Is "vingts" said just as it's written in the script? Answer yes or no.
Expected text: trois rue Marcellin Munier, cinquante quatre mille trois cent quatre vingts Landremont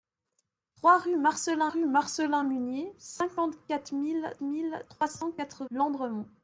no